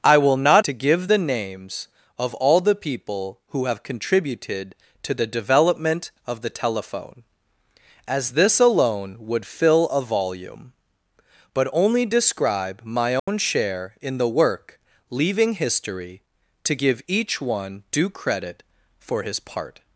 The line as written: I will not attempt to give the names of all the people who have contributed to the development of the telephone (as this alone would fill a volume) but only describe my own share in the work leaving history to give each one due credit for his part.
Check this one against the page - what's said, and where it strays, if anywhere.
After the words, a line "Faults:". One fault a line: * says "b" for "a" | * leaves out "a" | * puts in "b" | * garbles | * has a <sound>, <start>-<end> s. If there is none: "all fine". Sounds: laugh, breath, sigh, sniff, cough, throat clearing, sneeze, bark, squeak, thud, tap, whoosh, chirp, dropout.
I will not to give the names of all the people who have contributed to the development of the telephone (as this alone would fill a volume) but only describe my own share in the work leaving history to give each one due credit for his part.
Faults:
* leaves out "attempt"
* has a dropout, 13.2-13.3 s